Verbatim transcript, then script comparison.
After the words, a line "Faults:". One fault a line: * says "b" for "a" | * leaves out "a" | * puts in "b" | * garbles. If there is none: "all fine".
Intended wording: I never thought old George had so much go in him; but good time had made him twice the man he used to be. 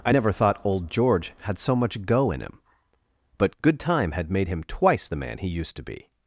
I never thought old George had so much go in him; but good time had made him twice the man he used to be.
Faults:
all fine